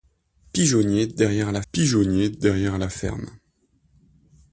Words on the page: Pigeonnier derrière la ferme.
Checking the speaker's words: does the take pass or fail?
fail